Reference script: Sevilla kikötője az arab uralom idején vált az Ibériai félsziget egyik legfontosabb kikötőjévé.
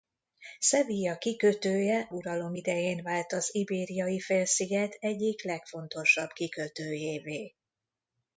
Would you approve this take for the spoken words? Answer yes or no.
no